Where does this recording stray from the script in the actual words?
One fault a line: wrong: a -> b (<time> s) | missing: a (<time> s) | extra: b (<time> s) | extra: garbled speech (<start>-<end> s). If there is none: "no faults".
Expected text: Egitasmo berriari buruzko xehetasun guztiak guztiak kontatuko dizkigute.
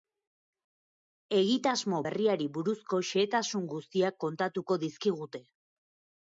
missing: guztiak (4.2 s)